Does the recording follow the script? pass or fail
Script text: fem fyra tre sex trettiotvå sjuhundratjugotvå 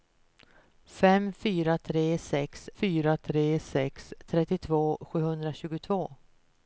fail